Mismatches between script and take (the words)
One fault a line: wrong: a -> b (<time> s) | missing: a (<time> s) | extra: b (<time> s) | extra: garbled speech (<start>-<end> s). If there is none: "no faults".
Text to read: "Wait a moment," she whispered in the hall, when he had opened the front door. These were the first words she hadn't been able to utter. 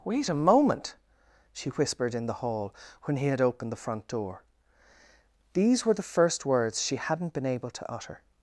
no faults